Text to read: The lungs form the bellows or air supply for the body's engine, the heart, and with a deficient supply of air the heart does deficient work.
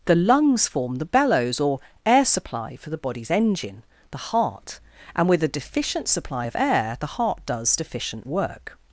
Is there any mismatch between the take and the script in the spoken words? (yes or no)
no